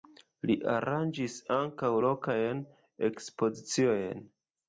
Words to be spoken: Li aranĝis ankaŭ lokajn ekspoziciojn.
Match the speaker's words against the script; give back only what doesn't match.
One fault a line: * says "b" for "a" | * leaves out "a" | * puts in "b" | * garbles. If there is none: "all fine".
all fine